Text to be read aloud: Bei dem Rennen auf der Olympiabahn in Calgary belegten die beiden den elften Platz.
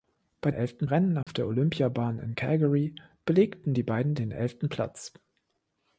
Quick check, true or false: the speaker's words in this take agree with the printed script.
false